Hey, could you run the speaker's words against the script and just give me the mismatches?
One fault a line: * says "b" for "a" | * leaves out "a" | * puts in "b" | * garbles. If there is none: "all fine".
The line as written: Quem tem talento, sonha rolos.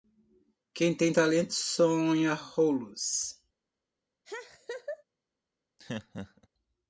all fine